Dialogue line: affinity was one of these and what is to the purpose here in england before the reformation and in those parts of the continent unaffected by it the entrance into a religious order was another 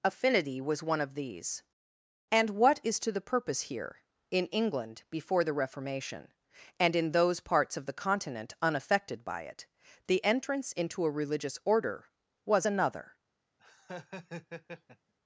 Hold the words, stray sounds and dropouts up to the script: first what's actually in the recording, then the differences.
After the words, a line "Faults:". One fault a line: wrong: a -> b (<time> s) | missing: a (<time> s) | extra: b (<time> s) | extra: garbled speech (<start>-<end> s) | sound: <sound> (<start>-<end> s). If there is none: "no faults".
affinity was one of these and what is to the purpose here in england before the reformation and in those parts of the continent unaffected by it the entrance into a religious order was another
Faults:
sound: laugh (13.6-15.1 s)